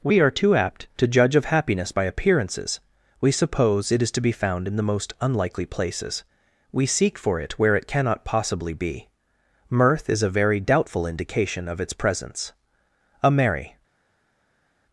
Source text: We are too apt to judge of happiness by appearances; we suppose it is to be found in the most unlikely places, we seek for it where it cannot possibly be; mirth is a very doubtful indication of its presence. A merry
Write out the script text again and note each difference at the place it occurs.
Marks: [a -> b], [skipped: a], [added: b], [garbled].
We are too apt to judge of happiness by appearances; we suppose it is to be found in the most unlikely places, we seek for it where it cannot possibly be; mirth is a very doubtful indication of its presence. A merry